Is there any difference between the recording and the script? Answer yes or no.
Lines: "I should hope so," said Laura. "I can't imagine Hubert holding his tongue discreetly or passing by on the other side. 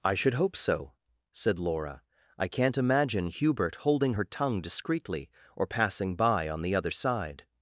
yes